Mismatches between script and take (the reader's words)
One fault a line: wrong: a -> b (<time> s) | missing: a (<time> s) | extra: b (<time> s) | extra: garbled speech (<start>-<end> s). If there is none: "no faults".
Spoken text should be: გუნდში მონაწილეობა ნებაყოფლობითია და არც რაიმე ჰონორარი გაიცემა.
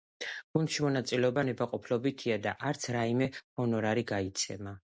no faults